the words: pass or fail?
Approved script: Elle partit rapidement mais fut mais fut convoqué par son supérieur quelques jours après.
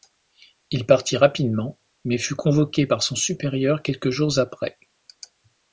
fail